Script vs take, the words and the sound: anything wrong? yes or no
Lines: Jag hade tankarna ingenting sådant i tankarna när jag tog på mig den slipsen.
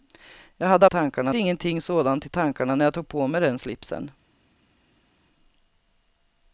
no